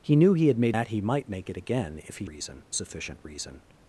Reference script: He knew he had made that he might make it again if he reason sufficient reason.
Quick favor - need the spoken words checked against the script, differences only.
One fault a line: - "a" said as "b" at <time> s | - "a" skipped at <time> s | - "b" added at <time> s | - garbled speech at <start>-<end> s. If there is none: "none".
none